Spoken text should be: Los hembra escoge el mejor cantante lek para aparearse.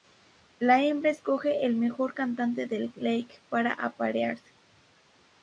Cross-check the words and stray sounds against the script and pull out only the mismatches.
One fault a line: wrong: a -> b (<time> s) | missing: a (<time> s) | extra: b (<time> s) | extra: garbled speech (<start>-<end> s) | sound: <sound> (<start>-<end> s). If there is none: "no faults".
wrong: Los -> La (0.6 s)
extra: del (2.6 s)